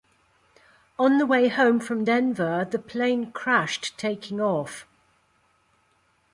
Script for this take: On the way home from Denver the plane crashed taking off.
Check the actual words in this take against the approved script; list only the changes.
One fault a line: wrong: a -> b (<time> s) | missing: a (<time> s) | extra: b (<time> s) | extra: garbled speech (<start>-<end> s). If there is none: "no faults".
no faults